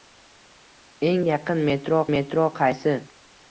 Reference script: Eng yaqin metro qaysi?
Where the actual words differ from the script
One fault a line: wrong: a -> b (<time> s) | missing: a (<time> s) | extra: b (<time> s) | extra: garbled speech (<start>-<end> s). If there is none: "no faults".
extra: metro (2.1 s)